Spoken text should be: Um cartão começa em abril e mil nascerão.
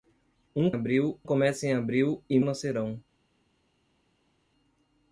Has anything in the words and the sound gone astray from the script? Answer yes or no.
yes